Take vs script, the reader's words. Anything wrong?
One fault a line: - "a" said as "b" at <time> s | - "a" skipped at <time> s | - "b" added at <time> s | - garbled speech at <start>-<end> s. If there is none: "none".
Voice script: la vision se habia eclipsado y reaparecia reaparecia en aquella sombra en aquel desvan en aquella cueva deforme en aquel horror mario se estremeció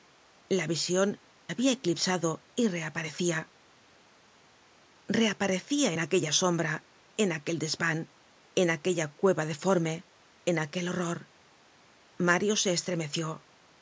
- "se" skipped at 1.2 s